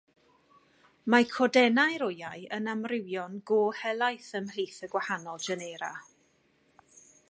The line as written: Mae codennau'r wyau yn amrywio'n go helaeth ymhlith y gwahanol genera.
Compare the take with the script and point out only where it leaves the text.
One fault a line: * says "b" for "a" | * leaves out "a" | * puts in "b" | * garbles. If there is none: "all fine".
all fine